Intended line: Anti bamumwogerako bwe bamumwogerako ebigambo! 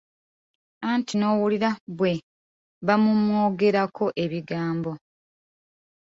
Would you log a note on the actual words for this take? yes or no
yes